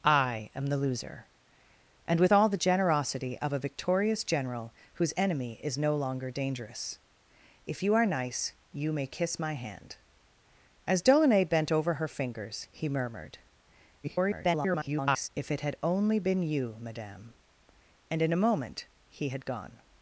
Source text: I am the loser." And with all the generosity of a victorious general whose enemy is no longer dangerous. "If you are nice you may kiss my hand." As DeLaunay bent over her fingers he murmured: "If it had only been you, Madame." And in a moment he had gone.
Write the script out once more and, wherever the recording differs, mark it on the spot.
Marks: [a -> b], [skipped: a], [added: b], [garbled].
I am the loser." And with all the generosity of a victorious general whose enemy is no longer dangerous. "If you are nice you may kiss my hand." As DeLaunay bent over her fingers he murmured: [garbled] "If it had only been you, Madame." And in a moment he had gone.